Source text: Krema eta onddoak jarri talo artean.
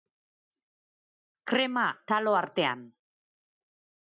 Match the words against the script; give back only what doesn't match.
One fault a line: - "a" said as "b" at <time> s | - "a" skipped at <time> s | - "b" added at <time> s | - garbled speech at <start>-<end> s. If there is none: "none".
- "eta onddoak jarri" skipped at 1.8 s